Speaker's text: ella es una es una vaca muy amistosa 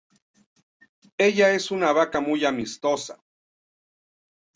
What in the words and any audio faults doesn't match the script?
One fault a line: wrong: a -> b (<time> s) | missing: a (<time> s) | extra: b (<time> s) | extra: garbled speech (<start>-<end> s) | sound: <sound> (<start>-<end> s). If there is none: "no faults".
missing: es una (1.9 s)